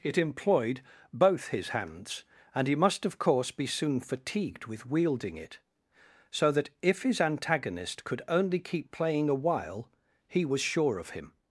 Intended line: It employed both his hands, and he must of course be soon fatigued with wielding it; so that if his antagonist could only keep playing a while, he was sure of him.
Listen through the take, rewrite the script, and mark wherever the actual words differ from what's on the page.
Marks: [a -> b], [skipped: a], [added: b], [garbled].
It employed both his hands, and he must of course be soon fatigued with wielding it; so that if his antagonist could only keep playing a while, he was sure of him.